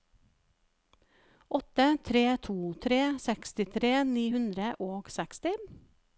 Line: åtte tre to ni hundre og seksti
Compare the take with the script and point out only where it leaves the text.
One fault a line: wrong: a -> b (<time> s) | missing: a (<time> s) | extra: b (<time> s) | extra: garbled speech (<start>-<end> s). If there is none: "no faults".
extra: tre sekstitre (2.9 s)